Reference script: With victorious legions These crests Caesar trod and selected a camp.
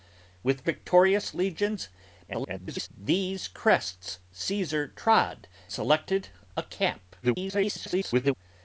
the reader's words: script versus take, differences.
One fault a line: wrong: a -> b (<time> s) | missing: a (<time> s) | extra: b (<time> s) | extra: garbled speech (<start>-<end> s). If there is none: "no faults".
extra: garbled speech (2.3-2.9 s)
missing: and (5.5 s)
extra: garbled speech (7.2-8.4 s)